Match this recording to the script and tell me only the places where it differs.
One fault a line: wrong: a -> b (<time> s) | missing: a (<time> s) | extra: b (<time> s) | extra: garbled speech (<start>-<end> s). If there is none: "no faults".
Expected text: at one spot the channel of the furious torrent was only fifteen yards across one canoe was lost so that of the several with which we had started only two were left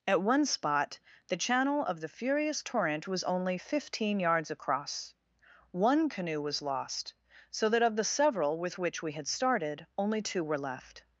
no faults